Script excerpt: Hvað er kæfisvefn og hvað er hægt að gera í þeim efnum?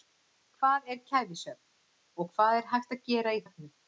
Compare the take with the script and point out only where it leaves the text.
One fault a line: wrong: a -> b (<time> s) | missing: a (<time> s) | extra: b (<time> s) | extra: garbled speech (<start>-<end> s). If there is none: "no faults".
missing: þeim (3.5 s)